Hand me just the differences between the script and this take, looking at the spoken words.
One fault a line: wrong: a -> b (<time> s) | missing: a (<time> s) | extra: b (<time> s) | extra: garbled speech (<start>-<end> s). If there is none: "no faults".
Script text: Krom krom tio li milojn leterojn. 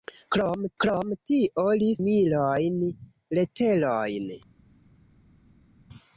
no faults